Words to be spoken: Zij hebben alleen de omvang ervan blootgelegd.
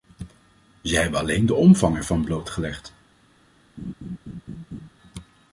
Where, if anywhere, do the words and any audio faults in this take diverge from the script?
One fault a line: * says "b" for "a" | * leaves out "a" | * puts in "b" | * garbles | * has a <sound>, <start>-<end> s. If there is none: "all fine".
* has a laugh, 3.8-4.9 s